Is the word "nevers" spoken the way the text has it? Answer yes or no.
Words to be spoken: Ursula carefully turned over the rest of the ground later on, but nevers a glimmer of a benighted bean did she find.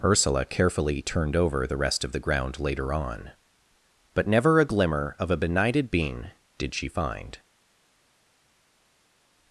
no